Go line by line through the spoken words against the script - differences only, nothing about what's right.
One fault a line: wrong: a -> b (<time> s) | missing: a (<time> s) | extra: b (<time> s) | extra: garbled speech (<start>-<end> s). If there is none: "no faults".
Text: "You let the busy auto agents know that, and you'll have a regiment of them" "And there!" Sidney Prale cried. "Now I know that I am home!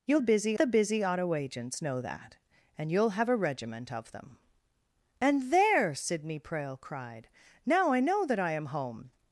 wrong: let -> busy (0.2 s)